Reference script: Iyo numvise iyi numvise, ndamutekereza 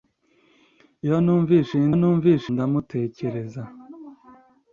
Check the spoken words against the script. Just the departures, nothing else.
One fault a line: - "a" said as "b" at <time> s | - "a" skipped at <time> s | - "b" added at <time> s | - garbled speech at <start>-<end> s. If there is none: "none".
none